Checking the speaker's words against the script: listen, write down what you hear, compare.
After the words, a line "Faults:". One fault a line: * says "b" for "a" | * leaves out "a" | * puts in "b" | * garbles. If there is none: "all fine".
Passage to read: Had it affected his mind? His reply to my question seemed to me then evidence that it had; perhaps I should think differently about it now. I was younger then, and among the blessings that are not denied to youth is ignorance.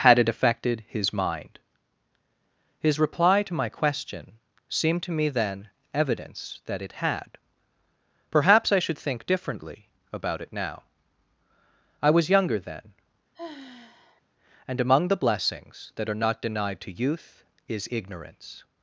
Had it affected his mind? His reply to my question seemed to me then evidence that it had; perhaps I should think differently about it now. I was younger then, and among the blessings that are not denied to youth is ignorance.
Faults:
all fine